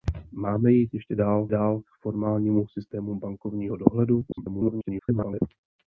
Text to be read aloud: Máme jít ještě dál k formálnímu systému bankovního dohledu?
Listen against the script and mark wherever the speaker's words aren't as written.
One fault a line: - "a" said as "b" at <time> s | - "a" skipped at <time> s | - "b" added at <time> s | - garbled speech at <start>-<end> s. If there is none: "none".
- "dál" added at 1.5 s
- garbled speech at 4.3-5.4 s